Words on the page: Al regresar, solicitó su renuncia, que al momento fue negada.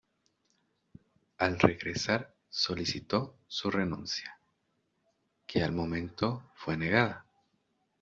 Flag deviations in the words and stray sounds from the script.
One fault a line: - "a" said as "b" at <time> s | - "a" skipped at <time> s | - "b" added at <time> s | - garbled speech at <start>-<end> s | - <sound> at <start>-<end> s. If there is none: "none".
none